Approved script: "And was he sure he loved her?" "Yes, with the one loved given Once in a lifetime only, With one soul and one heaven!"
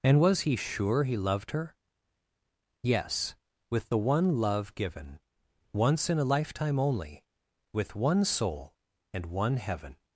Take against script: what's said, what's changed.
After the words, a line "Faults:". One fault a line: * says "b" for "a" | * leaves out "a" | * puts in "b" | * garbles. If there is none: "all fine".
"And was he sure he loved her?" "Yes, with the one love given Once in a lifetime only, With one soul and one heaven!"
Faults:
* says "love" for "loved"